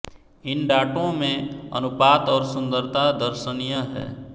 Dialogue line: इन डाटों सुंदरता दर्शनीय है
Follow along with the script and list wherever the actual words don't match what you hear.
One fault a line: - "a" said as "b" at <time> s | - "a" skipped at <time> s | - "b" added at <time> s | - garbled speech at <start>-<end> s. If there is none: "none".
- "में अनुपात और" added at 1.1 s